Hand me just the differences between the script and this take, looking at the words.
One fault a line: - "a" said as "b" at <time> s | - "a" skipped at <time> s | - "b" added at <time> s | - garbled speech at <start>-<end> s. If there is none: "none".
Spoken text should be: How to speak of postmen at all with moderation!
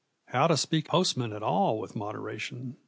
- "of" skipped at 0.9 s